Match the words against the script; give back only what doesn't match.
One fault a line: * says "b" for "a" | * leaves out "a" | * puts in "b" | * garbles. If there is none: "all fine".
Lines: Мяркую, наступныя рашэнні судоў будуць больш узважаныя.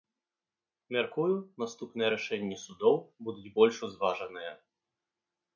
all fine